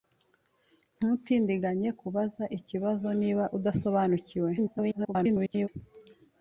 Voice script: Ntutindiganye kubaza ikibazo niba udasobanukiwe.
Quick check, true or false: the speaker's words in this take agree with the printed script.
false